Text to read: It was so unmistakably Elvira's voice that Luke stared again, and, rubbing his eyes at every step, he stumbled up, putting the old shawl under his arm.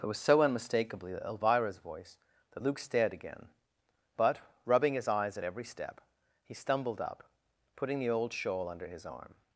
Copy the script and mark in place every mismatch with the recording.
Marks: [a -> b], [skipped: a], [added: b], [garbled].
It was so unmistakably Elvira's voice that Luke stared again, [and, -> but] rubbing his eyes at every step, he stumbled up, putting the old shawl under his arm.